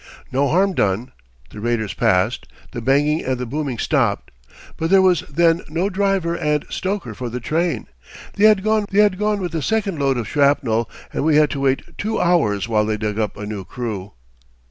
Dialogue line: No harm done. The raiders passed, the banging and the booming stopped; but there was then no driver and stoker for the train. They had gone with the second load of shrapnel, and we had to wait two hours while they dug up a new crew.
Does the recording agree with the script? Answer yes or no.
no